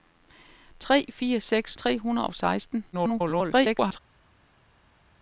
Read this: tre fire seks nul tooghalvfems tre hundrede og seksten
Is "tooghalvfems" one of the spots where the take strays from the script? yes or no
yes